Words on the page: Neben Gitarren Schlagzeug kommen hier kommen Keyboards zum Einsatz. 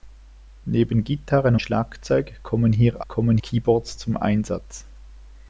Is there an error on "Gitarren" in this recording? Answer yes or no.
no